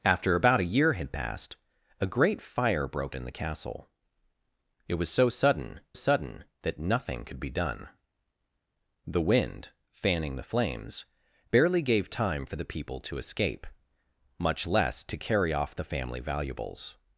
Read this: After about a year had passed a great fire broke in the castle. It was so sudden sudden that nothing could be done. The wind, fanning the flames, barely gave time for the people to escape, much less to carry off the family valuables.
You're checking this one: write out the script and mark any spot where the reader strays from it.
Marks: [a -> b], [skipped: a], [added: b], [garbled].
After about a year had passed a great fire broke in the castle. It was so sudden sudden that nothing could be done. The wind, fanning the flames, barely gave time for the people to escape, much less to carry off the family valuables.